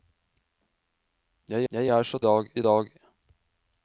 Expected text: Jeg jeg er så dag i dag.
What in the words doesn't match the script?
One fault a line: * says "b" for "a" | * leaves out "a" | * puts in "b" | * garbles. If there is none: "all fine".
all fine